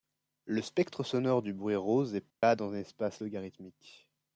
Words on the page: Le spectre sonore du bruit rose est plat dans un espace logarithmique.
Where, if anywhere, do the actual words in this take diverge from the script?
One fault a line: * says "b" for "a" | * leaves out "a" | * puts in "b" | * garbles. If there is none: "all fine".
all fine